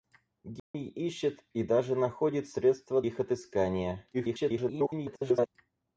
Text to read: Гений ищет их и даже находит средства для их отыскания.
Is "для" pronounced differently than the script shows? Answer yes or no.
yes